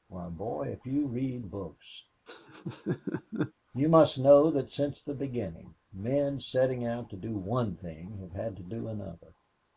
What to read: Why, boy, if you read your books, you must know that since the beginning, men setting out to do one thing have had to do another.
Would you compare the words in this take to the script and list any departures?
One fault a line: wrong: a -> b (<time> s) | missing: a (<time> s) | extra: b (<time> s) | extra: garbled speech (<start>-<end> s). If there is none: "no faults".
missing: your (1.4 s)